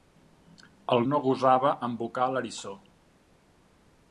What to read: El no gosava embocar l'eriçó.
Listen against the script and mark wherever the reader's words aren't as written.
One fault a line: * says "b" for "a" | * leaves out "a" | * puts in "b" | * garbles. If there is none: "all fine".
all fine